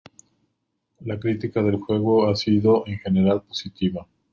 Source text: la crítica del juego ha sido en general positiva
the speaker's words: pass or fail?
pass